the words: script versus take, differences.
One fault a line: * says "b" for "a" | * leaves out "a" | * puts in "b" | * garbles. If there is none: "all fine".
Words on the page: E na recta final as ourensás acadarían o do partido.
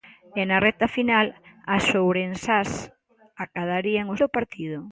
all fine